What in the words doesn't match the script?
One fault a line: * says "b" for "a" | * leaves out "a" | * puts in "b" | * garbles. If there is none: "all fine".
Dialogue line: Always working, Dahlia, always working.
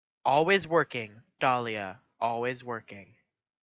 all fine